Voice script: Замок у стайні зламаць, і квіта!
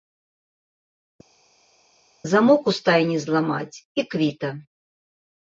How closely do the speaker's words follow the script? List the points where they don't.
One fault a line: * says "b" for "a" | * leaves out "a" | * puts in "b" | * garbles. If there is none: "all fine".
all fine